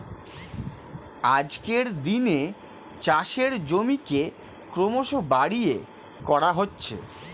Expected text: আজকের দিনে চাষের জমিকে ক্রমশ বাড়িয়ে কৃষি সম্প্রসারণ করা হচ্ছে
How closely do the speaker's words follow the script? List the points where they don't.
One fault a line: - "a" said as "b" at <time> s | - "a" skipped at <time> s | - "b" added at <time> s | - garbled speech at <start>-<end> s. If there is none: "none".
- "কৃষি সম্প্রসারণ" skipped at 5.8 s